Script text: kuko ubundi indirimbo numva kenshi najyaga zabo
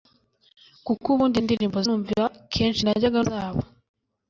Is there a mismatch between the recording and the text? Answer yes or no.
no